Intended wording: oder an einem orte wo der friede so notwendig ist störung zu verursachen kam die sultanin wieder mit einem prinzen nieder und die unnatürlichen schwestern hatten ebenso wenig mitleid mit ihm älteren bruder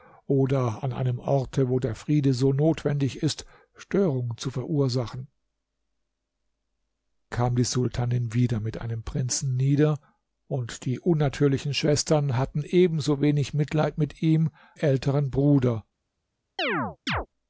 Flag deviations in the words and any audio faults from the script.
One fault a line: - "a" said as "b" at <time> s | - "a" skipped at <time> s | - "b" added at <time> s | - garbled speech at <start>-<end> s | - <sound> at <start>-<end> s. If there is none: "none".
- chirp at 16.6-17.3 s